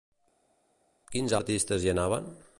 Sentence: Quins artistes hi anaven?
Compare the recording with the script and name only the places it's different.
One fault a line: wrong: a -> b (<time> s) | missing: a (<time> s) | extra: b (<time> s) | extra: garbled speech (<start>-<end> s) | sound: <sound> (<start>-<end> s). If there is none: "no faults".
no faults